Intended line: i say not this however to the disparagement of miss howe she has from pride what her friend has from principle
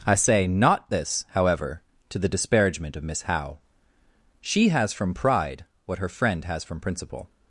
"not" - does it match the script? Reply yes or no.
yes